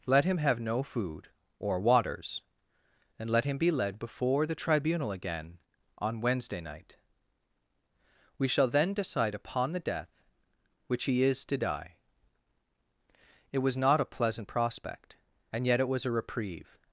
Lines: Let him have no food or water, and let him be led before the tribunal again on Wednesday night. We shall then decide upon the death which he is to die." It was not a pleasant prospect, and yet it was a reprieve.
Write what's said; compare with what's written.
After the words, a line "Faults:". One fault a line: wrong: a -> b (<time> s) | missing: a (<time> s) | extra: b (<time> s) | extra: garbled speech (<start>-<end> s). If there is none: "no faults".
Let him have no food or waters, and let him be led before the tribunal again on Wednesday night. We shall then decide upon the death which he is to die." It was not a pleasant prospect, and yet it was a reprieve.
Faults:
wrong: water -> waters (1.8 s)